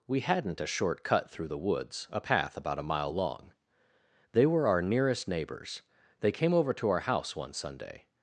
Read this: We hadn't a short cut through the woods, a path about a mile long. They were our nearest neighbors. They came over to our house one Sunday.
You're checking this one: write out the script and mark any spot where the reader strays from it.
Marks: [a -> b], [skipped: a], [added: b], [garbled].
We hadn't a short cut through the woods, a path about a mile long. They were our nearest neighbors. They came over to our house one Sunday.